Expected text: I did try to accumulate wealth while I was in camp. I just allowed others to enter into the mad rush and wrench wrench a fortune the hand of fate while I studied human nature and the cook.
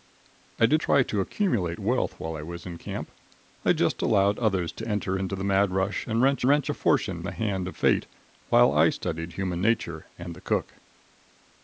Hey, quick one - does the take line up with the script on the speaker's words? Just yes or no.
yes